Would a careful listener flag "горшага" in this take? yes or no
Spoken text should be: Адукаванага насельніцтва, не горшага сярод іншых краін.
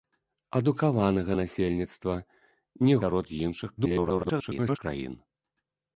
yes